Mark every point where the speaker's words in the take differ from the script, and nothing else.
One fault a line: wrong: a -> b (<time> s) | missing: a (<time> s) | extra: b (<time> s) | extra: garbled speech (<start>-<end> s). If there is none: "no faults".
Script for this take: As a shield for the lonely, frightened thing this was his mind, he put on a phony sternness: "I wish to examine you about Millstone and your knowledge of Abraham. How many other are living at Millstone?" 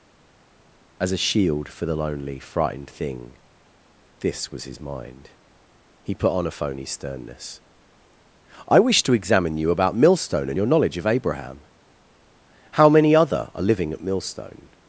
no faults